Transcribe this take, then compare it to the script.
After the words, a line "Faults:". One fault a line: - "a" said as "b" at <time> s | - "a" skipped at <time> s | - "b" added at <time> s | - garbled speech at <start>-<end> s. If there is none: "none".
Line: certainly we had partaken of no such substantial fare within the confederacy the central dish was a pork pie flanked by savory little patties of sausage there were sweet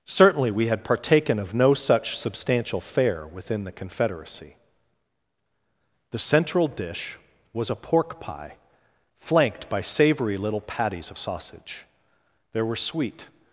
certainly we had partaken of no such substantial fare within the confederacy the central dish was a pork pie flanked by savory little patties of sausage there were sweet
Faults:
none